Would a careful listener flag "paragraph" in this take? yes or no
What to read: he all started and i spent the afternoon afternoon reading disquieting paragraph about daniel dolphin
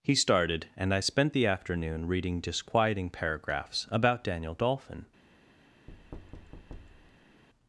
yes